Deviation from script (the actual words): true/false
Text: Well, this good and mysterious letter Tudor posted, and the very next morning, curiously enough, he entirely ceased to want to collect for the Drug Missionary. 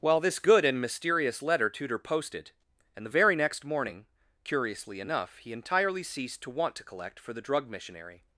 false